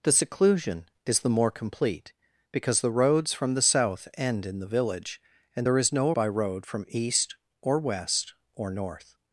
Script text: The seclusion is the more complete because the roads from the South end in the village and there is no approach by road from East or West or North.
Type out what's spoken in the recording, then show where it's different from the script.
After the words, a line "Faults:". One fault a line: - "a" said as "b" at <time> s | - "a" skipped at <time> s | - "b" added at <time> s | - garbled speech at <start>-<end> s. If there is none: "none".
The seclusion is the more complete because the roads from the South end in the village and there is no by road from East or West or North.
Faults:
- "approach" skipped at 6.1 s